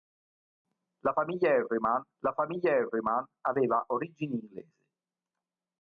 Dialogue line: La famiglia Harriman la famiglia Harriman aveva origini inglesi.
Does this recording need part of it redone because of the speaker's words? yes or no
no